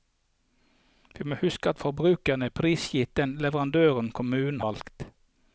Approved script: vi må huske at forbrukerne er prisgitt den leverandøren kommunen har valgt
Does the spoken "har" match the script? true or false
false